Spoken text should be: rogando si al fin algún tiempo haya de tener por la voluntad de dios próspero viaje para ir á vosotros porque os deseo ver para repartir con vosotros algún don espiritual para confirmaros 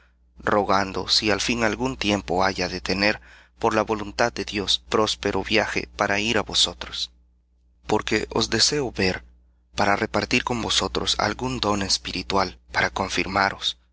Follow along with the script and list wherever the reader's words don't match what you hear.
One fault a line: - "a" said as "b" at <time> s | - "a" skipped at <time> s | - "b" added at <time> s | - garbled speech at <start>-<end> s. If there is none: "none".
none